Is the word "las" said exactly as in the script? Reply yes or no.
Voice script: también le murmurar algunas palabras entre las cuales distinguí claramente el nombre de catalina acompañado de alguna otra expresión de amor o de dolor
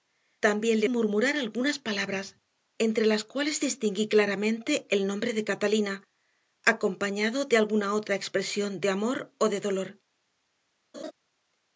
yes